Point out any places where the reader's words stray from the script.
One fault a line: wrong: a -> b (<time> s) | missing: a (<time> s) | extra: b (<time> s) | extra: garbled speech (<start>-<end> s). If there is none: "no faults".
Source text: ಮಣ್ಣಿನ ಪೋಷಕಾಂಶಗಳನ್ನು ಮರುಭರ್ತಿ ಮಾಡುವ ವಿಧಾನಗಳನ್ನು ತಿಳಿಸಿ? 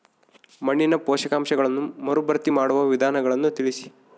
no faults